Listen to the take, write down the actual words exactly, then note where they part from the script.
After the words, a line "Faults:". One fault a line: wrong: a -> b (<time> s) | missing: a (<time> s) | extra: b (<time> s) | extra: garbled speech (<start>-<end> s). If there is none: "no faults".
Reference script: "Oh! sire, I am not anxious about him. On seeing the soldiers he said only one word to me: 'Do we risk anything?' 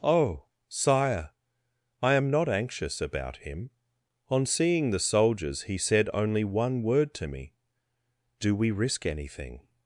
"Oh! sire, I am not anxious about him. On seeing the soldiers he said only one word to me: 'Do we risk anything?'
Faults:
no faults